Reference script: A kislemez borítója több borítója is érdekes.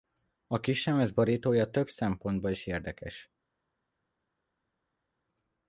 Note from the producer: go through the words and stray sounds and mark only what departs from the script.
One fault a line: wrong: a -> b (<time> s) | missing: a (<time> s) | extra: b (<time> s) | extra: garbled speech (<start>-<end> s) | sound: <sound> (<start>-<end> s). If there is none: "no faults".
wrong: borítója -> szempontból (1.9 s)